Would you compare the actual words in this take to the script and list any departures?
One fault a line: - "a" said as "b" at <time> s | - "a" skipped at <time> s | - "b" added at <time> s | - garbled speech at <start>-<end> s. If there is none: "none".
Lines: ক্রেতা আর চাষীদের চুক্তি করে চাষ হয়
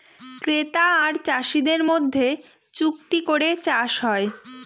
- "মধ্যে" added at 1.9 s